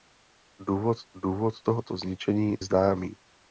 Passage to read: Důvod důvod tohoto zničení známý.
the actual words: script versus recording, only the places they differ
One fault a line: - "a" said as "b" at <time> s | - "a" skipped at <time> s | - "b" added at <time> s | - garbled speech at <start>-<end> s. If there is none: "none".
none